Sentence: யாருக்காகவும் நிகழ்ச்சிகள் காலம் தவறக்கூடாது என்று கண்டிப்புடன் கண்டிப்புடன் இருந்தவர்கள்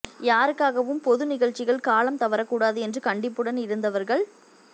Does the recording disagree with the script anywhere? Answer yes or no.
yes